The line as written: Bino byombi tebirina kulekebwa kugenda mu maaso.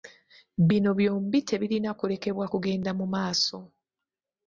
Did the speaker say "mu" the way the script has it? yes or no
yes